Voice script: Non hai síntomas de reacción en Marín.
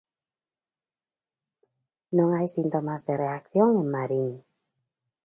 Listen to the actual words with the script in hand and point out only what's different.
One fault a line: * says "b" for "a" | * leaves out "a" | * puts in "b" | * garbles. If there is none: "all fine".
all fine